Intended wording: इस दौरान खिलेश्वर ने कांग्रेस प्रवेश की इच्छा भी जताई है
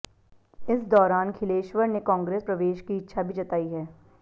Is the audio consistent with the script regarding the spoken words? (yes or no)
yes